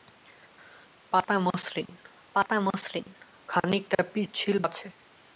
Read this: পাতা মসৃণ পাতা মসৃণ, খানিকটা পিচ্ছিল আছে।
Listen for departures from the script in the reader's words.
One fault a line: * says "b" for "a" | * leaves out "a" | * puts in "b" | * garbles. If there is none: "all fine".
all fine